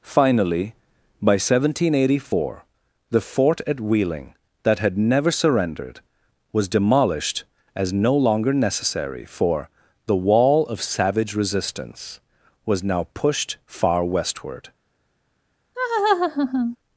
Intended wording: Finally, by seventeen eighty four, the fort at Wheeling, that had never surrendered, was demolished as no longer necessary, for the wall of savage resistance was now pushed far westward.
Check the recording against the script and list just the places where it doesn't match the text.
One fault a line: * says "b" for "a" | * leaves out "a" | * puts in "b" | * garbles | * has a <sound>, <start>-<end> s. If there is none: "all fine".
* has a laugh, 15.7-16.8 s